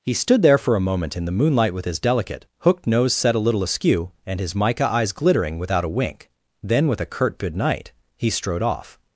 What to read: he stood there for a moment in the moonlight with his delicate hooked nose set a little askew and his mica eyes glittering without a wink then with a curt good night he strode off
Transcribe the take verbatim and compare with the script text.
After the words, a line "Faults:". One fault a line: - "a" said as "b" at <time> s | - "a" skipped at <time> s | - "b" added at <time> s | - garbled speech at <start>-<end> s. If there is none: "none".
he stood there for a moment in the moonlight with his delicate hooked nose set a little askew and his mica eyes glittering without a wink then with a curt good night he strode off
Faults:
none